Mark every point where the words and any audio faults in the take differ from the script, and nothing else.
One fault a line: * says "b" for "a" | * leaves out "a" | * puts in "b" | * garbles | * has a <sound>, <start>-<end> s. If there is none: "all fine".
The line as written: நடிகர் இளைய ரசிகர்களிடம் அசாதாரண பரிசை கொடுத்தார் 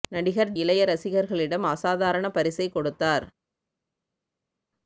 all fine